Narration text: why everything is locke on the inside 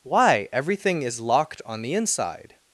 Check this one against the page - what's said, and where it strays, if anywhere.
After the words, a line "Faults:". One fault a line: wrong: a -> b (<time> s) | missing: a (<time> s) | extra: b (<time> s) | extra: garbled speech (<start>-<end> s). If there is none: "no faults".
why everything is locked on the inside
Faults:
wrong: locke -> locked (1.2 s)